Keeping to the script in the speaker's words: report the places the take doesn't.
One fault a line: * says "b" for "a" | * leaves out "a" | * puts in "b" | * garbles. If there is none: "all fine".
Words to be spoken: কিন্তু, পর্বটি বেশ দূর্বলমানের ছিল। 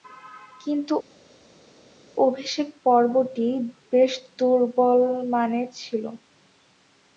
* puts in "অভিষেক"